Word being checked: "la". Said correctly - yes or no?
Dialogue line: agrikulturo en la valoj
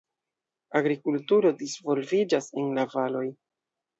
yes